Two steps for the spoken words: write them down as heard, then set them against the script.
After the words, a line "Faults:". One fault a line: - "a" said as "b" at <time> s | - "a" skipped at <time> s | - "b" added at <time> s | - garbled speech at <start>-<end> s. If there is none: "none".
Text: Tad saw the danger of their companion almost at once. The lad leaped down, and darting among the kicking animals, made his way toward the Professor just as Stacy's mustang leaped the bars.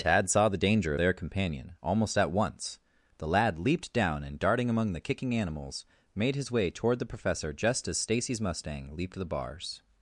Tad saw the danger their companion almost at once. The lad leaped down, and darting among the kicking animals, made his way toward the Professor just as Stacy's mustang leaped the bars.
Faults:
- "of" skipped at 0.9 s